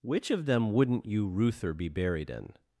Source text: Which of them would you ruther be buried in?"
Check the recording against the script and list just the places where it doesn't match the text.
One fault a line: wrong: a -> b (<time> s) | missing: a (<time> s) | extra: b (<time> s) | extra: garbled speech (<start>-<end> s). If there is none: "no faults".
wrong: would -> wouldn't (0.7 s)